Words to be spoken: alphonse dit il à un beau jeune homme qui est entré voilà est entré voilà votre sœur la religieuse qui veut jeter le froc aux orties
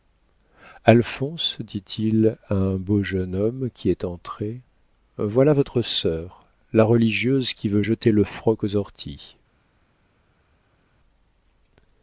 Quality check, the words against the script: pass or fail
fail